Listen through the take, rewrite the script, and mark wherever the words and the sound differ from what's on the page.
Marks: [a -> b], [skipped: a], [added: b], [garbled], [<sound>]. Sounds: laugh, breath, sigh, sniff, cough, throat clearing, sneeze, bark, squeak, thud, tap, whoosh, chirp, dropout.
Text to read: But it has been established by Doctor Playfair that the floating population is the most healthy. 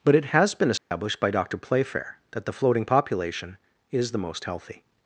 But it has been established [dropout] by Doctor Playfair that the floating population is the most healthy.